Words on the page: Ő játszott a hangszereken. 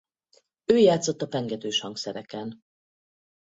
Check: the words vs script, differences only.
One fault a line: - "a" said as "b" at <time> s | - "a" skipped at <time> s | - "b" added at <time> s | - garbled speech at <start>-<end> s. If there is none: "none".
- "pengetős" added at 1.3 s